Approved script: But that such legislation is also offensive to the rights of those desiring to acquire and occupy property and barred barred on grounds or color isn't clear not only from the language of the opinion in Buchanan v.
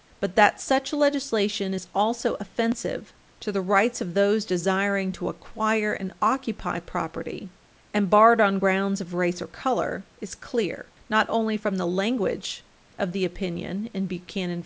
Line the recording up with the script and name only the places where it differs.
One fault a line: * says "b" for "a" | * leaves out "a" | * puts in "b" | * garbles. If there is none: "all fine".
* leaves out "barred"
* puts in "of race"
* says "is" for "isn't"